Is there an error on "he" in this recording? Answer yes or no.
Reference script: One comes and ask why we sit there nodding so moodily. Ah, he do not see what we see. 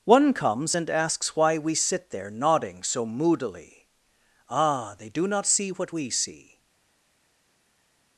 yes